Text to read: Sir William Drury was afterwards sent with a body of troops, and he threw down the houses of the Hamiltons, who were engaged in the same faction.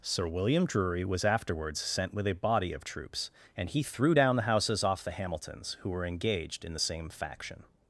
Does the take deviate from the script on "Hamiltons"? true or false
false